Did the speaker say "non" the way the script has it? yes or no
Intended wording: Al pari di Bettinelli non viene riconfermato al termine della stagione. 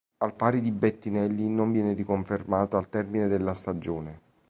yes